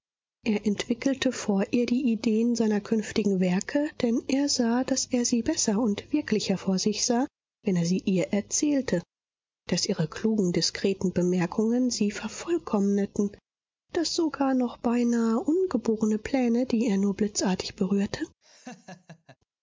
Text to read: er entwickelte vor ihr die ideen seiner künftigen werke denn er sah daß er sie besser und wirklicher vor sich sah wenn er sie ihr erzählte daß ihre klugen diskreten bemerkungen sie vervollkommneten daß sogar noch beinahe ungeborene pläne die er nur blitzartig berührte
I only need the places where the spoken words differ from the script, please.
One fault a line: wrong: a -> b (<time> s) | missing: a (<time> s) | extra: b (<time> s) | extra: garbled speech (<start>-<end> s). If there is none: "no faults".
no faults